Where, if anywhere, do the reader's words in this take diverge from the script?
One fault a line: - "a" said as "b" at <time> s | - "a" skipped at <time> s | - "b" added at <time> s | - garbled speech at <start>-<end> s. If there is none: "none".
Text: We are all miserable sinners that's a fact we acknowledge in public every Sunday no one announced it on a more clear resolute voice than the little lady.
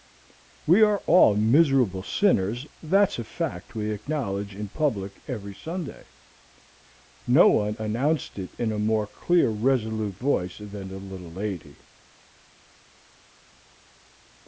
- "on" said as "in" at 8.6 s